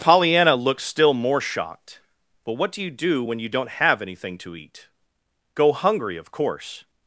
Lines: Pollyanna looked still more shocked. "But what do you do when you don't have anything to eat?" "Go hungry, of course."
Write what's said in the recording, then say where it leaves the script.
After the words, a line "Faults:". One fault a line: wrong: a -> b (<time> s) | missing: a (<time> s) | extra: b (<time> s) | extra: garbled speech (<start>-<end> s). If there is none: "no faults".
Pollyanna looked still more shocked. "But what do you do when you don't have anything to eat?" "Go hungry, of course."
Faults:
no faults